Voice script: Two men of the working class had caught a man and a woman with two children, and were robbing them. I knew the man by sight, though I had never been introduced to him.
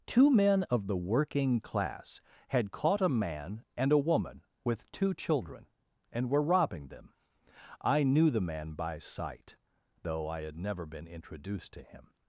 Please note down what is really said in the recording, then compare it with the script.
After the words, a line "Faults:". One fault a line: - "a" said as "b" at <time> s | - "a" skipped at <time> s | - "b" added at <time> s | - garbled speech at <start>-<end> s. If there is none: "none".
Two men of the working class had caught a man and a woman with two children, and were robbing them. I knew the man by sight, though I had never been introduced to him.
Faults:
none